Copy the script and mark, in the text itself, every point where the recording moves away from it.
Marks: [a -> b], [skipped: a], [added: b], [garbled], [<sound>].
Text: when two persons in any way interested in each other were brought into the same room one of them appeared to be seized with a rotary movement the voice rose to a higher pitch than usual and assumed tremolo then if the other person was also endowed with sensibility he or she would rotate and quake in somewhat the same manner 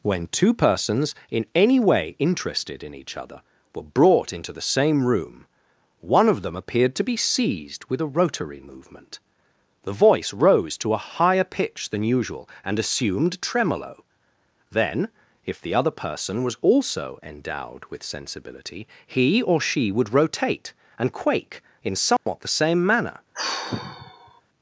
when two persons in any way interested in each other were brought into the same room one of them appeared to be seized with a rotary movement the voice rose to a higher pitch than usual and assumed tremolo then if the other person was also endowed with sensibility he or she would rotate and quake in somewhat [dropout] the same manner [sigh]